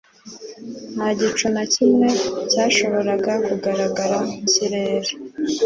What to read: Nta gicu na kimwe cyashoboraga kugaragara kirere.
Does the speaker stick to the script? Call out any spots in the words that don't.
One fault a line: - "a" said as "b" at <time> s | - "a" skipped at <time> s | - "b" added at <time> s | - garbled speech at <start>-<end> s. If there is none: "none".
none